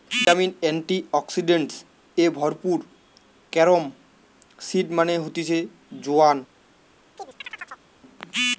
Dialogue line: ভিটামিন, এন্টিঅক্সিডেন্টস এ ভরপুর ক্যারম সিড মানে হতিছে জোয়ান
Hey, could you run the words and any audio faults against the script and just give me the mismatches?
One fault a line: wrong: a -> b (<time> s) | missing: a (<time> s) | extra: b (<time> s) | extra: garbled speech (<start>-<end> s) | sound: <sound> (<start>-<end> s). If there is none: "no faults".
sound: chirp (7.2-7.9 s)